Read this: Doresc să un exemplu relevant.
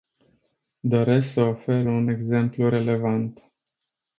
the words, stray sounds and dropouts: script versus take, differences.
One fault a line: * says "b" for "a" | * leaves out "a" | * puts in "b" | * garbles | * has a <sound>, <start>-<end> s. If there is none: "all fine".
* puts in "ofer"